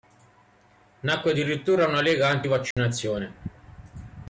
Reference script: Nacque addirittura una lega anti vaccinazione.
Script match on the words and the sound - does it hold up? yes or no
no